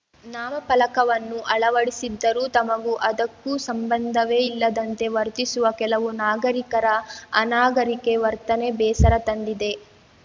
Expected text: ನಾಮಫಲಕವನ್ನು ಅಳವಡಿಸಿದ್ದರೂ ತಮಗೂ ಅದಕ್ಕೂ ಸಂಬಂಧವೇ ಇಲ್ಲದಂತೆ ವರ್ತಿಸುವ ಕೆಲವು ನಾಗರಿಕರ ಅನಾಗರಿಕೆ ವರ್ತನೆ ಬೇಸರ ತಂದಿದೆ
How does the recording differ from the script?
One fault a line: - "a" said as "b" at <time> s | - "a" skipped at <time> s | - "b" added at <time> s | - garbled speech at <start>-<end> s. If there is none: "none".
none